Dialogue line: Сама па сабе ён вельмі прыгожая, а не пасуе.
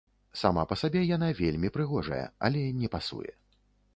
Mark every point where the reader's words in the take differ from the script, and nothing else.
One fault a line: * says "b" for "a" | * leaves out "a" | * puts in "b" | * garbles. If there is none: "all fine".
* says "яна" for "ён"
* says "але" for "а"